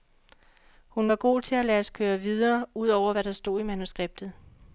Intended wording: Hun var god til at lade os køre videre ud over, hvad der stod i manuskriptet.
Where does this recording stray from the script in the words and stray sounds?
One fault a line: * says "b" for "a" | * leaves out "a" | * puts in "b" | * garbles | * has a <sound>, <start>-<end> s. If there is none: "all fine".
all fine